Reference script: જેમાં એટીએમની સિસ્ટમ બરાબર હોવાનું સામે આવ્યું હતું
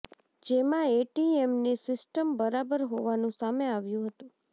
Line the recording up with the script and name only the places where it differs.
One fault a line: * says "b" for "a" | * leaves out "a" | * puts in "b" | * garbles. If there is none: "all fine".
all fine